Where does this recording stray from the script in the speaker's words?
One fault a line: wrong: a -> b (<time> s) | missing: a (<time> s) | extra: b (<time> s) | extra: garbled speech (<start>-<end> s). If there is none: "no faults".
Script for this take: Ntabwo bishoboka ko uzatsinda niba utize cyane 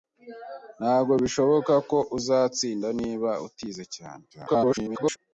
extra: garbled speech (4.3-5.2 s)